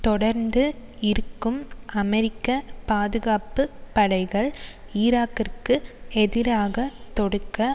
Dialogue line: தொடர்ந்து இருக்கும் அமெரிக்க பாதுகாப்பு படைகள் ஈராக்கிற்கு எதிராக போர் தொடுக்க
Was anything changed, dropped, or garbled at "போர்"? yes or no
yes